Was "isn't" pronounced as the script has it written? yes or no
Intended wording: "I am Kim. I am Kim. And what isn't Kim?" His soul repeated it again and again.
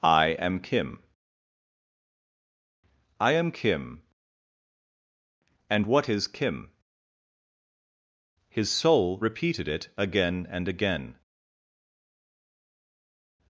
no